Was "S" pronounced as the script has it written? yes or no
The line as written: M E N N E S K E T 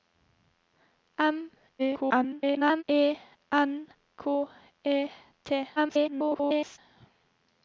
no